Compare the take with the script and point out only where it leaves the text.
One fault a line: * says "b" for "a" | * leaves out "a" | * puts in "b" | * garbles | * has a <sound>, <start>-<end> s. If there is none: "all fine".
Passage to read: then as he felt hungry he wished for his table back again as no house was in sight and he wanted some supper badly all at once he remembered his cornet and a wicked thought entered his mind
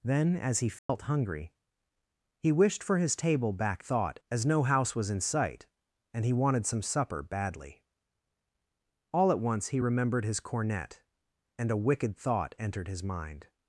* has a dropout, 0.8-0.9 s
* says "thought" for "again"